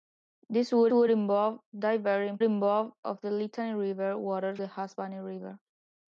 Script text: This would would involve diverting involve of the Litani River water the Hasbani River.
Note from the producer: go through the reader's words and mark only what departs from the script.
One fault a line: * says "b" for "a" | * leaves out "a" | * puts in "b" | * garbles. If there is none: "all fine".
all fine